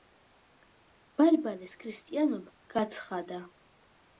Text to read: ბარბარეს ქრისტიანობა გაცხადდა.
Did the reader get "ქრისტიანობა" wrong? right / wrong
right